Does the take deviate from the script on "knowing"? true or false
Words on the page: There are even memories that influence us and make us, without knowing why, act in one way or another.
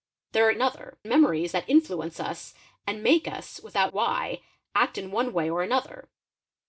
true